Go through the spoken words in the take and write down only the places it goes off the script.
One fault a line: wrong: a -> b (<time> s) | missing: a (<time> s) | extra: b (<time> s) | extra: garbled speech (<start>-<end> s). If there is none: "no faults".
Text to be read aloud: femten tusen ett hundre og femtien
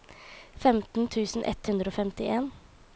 no faults